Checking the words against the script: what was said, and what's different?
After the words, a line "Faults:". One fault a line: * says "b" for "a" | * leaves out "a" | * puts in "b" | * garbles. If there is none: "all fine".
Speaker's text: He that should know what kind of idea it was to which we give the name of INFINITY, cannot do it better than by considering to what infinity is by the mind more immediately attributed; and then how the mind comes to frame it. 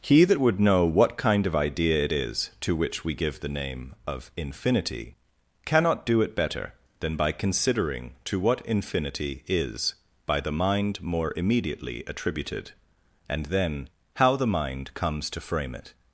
He that would know what kind of idea it is to which we give the name of INFINITY, cannot do it better than by considering to what infinity is by the mind more immediately attributed; and then how the mind comes to frame it.
Faults:
* says "would" for "should"
* says "is" for "was"